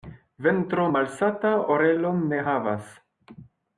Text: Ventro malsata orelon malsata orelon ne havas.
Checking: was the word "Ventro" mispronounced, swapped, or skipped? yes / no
no